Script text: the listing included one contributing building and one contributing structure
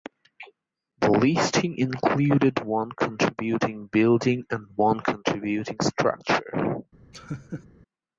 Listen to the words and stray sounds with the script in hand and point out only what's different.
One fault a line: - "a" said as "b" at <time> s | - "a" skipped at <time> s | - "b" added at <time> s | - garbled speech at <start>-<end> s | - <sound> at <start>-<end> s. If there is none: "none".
- laugh at 7.1-7.7 s